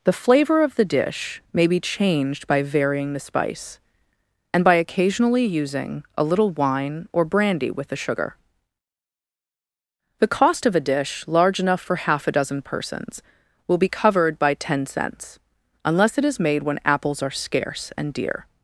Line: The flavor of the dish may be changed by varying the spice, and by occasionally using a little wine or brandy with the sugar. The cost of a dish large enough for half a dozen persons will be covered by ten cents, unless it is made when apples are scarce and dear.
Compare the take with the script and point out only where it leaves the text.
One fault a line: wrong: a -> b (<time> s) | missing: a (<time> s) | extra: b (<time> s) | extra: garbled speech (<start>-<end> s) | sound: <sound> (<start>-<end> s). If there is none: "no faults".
no faults